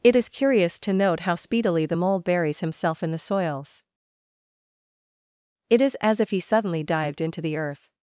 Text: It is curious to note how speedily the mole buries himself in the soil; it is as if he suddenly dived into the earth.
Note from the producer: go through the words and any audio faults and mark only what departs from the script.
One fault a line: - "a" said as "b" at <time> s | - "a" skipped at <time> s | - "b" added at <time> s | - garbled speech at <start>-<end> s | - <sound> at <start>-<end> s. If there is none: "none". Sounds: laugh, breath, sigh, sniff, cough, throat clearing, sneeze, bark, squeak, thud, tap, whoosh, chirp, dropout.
- "soil" said as "soils" at 3.2 s